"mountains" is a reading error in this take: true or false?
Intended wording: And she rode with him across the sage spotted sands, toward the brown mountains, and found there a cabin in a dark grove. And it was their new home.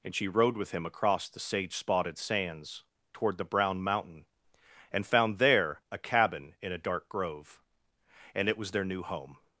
true